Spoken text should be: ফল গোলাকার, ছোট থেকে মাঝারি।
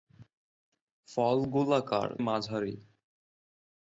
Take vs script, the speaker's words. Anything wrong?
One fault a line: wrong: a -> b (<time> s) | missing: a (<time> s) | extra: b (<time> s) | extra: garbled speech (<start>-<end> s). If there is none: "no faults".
missing: ছোট থেকে (2.1 s)